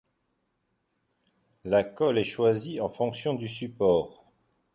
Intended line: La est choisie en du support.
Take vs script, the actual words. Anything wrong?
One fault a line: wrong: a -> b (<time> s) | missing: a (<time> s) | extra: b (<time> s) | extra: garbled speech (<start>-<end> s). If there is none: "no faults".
extra: colle (1.8 s)
extra: fonction (2.9 s)